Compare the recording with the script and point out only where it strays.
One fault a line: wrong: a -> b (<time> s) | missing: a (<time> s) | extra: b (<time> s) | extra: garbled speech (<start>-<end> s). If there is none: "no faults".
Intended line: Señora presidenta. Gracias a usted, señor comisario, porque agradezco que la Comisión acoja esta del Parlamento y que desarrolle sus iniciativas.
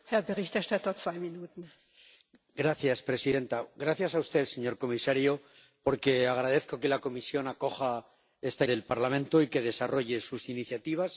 no faults